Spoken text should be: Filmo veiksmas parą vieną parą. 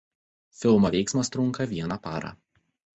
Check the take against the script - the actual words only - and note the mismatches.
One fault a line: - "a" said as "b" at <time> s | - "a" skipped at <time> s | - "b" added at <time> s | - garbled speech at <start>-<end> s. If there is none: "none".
- "parą" said as "trunka" at 1.3 s